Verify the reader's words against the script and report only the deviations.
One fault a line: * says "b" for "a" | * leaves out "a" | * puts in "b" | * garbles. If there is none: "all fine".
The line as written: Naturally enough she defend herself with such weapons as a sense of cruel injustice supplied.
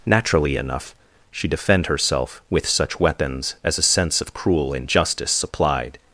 all fine